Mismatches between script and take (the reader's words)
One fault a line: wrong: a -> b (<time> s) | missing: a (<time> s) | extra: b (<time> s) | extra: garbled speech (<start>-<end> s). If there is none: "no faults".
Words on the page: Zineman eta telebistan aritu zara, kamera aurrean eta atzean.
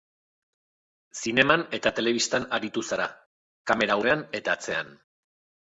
no faults